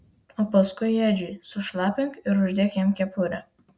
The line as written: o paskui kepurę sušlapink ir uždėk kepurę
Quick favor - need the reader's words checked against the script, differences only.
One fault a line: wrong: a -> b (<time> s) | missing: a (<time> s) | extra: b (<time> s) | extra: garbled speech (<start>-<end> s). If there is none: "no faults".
wrong: kepurę -> edžiui (1.1 s)
extra: jam (2.8 s)